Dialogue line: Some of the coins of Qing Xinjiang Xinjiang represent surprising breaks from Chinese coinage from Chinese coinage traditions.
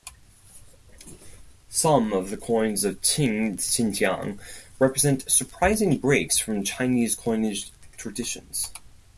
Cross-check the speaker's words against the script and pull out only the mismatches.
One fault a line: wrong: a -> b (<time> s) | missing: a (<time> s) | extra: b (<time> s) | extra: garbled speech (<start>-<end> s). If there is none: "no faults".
missing: Xinjiang (4.4 s)
missing: from Chinese coinage (7.7 s)